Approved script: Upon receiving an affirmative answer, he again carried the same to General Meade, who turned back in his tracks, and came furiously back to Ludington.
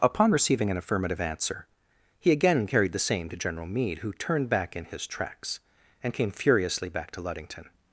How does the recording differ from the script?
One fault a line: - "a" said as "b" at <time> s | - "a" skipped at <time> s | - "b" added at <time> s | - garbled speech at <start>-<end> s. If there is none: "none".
none